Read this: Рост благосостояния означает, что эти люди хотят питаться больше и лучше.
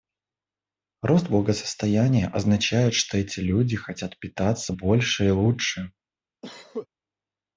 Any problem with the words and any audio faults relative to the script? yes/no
yes